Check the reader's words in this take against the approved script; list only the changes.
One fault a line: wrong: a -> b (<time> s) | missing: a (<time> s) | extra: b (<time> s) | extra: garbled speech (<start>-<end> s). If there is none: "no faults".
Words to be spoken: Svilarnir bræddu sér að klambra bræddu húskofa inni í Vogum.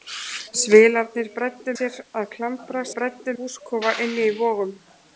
no faults